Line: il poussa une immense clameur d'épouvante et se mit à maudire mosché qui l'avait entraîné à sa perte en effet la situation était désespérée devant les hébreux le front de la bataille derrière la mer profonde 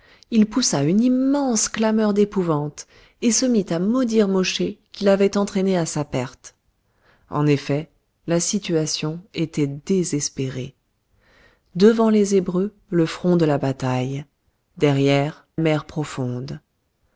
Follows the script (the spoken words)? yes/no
no